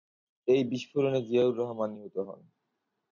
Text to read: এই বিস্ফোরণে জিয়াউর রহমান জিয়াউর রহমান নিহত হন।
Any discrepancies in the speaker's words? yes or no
yes